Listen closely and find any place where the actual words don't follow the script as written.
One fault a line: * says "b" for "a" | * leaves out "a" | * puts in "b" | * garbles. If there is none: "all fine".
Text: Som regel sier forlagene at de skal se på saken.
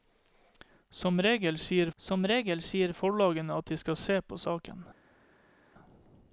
* puts in "som regel sier"